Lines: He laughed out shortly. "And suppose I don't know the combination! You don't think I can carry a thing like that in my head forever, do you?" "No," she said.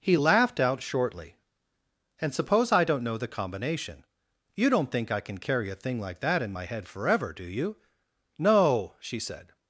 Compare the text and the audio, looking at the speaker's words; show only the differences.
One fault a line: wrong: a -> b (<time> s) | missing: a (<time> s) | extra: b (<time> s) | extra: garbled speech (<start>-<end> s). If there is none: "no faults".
no faults